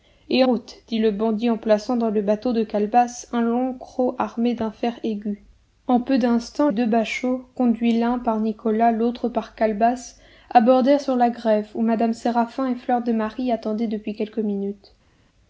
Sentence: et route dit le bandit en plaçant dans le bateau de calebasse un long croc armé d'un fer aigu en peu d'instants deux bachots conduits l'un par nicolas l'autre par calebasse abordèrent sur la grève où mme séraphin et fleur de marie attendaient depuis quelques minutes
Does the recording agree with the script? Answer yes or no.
yes